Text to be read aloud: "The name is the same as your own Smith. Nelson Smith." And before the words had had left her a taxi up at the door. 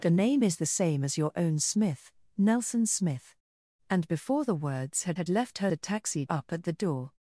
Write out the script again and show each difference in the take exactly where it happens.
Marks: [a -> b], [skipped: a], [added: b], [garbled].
"The name is the same as your own Smith. Nelson Smith." And before the words had had left her a taxi up at the door.